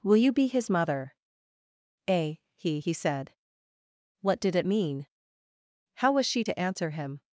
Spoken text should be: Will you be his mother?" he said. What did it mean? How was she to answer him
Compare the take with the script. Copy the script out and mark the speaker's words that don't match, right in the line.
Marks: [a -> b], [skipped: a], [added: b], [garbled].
Will you be his mother?" [added: a he] he said. What did it mean? How was she to answer him